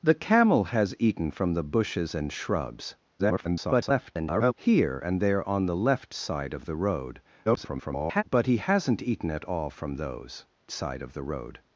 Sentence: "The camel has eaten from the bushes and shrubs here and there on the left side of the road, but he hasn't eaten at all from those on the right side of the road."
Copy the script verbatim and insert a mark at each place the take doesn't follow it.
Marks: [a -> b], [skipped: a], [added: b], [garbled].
"The camel has eaten from the bushes and shrubs [garbled] here and there on the left side of the road, [garbled] but he hasn't eaten at all from those [skipped: on the right] side of the road."